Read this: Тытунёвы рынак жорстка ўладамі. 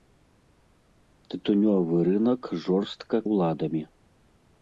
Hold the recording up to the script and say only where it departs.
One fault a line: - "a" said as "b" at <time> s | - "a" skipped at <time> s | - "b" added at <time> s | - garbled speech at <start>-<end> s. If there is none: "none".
none